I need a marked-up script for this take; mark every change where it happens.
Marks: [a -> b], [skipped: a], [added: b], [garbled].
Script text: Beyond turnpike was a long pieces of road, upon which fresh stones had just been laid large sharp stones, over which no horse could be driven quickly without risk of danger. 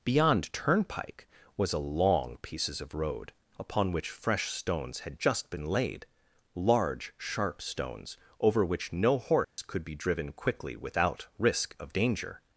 Beyond turnpike was a long pieces of road, upon which fresh stones had just been laid large sharp stones, over which no horse could be driven quickly without risk of danger.